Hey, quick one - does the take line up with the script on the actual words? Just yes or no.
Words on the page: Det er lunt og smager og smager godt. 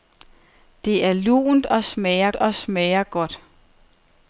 yes